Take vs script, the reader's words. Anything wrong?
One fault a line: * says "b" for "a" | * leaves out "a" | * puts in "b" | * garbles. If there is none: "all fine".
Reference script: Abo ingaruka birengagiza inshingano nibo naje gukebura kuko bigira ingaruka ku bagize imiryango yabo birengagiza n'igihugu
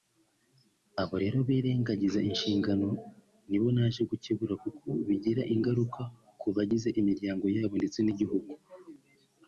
* says "rero" for "ingaruka"
* says "ndetse" for "birengagiza"